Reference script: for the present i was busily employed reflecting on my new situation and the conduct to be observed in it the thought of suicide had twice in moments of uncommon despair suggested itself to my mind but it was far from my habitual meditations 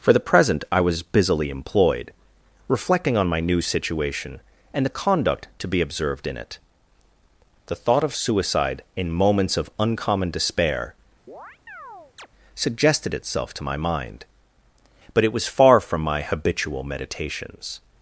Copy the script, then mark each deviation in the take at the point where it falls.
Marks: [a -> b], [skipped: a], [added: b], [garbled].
for the present i was busily employed reflecting on my new situation and the conduct to be observed in it the thought of suicide [skipped: had twice] in moments of uncommon despair suggested itself to my mind but it was far from my habitual meditations